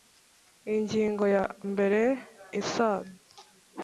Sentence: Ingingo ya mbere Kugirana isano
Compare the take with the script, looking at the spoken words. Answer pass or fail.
fail